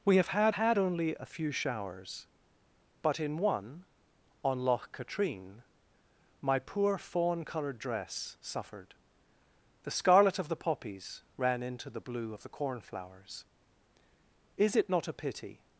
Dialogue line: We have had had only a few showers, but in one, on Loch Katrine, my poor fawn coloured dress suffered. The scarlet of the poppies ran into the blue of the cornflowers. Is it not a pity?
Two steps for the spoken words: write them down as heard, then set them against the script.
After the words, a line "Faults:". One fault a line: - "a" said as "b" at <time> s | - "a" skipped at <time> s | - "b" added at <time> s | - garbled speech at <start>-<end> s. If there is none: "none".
We have had had only a few showers, but in one, on Loch Katrine, my poor fawn coloured dress suffered. The scarlet of the poppies ran into the blue of the cornflowers. Is it not a pity?
Faults:
none